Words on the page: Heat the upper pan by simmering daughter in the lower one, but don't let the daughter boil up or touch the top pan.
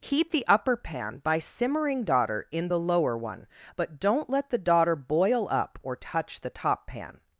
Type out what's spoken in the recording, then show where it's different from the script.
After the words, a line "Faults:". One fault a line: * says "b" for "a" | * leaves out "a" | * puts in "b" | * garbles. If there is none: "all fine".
Heat the upper pan by simmering daughter in the lower one, but don't let the daughter boil up or touch the top pan.
Faults:
all fine